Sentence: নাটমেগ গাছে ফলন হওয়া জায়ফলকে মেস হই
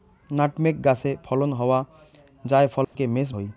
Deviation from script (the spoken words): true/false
false